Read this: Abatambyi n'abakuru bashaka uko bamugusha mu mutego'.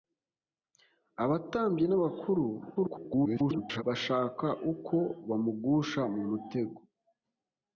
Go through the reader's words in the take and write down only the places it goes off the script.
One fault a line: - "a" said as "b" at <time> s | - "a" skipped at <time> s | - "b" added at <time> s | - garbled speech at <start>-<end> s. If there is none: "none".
- garbled speech at 2.8-3.8 s